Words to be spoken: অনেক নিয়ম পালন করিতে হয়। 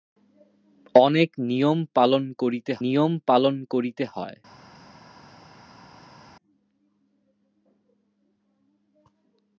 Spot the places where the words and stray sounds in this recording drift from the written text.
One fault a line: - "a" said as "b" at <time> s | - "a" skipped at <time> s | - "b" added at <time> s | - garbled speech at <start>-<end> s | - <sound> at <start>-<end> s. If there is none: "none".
- "নিয়ম পালন করিতে" added at 2.8 s